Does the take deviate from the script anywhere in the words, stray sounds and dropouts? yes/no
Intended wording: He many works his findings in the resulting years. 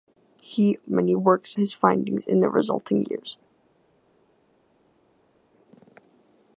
no